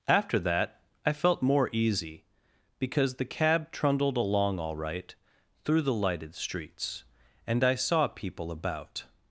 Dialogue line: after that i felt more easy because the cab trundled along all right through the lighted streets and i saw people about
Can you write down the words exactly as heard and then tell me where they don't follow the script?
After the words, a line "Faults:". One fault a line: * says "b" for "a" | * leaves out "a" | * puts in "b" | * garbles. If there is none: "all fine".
after that i felt more easy because the cab trundled along all right through the lighted streets and i saw people about
Faults:
all fine